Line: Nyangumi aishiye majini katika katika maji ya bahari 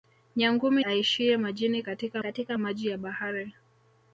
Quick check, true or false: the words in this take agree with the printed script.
true